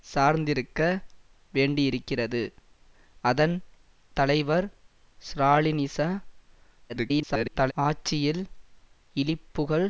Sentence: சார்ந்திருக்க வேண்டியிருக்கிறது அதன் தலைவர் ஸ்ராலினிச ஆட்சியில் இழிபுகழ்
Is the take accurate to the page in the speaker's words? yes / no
no